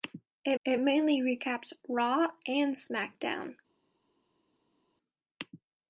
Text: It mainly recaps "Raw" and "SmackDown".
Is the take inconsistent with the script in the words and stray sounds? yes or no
yes